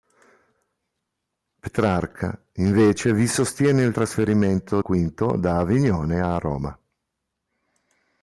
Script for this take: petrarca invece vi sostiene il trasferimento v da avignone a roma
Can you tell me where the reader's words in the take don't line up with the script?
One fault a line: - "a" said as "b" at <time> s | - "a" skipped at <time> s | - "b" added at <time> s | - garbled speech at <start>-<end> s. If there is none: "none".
none